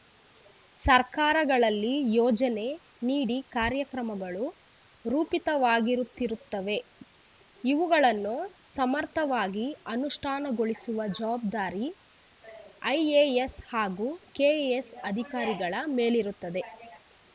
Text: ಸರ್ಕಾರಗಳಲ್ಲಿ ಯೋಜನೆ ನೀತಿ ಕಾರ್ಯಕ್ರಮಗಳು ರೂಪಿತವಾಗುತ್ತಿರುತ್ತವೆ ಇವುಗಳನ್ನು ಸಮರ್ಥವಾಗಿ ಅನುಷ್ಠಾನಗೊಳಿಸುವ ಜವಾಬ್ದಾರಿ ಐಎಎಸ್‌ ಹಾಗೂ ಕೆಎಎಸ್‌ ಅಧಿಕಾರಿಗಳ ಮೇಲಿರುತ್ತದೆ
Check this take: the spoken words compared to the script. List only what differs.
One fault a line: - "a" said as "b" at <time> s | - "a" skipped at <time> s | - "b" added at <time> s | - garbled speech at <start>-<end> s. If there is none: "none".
none